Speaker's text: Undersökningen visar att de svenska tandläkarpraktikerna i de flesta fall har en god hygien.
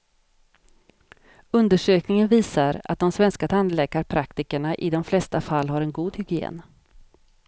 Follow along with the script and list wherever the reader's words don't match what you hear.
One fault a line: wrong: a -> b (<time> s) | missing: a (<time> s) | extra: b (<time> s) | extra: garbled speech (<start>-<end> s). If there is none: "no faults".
no faults